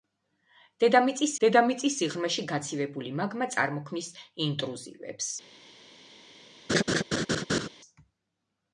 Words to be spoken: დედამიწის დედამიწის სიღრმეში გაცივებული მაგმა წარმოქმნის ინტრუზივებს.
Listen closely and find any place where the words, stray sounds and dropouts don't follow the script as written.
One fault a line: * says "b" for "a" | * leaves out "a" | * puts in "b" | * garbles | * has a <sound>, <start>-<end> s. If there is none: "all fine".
* has a laugh, 6.7-7.7 s